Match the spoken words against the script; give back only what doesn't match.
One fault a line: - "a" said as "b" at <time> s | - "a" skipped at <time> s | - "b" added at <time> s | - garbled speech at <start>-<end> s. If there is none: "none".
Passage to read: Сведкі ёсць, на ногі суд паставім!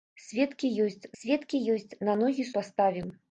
- "сведкі ёсць" added at 1.2 s
- "суд" skipped at 2.5 s